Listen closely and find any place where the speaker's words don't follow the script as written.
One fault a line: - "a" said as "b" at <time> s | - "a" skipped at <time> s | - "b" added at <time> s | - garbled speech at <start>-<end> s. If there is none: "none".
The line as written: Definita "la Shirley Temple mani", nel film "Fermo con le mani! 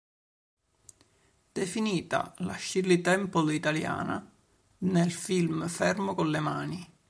- "mani" said as "italiana" at 3.5 s